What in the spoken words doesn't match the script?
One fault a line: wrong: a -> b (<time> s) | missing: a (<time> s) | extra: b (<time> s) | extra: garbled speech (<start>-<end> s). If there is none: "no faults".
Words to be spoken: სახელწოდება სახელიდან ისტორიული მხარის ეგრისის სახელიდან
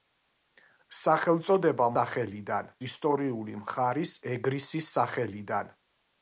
no faults